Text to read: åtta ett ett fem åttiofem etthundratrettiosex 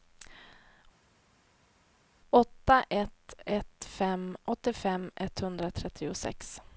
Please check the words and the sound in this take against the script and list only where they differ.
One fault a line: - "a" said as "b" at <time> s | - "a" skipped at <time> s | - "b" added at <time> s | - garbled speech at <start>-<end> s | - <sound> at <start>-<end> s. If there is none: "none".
none